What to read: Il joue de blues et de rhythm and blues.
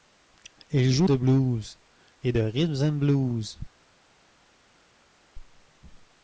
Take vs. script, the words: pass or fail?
pass